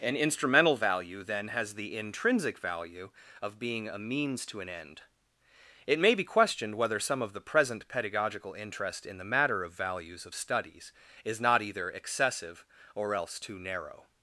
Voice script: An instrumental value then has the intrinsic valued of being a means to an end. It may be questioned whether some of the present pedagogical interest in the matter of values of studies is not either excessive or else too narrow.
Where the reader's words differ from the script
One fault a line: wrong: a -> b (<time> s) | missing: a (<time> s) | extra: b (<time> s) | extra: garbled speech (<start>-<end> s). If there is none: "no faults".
wrong: valued -> value (2.6 s)